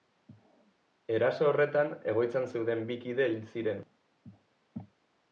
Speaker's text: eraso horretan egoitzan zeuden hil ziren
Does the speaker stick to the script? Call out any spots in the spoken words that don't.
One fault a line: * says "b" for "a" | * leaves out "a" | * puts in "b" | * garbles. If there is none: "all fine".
* puts in "bi kide"